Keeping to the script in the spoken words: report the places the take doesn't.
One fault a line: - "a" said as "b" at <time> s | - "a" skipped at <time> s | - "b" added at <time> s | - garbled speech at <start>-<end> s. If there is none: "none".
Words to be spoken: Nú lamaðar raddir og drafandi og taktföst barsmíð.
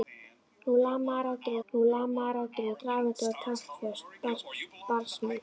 - "nú lamaðar raddir" added at 1.7 s